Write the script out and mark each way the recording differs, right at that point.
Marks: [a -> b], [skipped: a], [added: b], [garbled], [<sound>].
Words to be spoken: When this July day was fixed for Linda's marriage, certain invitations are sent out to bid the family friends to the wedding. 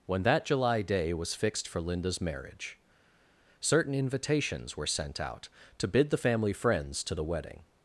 When [this -> that] July day was fixed for Linda's marriage, certain invitations [are -> were] sent out to bid the family friends to the wedding.